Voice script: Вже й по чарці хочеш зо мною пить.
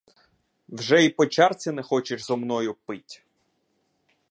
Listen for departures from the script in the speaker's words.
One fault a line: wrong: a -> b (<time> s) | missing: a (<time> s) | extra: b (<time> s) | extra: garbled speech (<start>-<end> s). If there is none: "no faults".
extra: не (1.7 s)